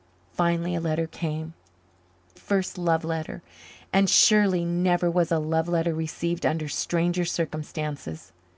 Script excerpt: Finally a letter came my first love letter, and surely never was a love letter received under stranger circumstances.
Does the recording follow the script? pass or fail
fail